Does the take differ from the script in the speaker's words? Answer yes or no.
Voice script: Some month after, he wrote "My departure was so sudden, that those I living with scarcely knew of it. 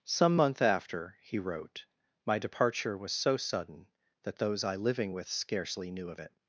no